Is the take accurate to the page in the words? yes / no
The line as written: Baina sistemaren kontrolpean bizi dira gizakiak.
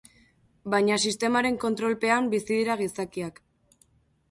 yes